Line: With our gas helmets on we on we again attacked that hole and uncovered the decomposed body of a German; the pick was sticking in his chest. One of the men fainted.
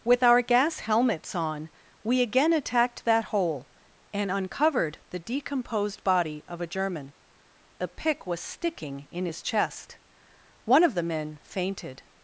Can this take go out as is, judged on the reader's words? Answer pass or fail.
fail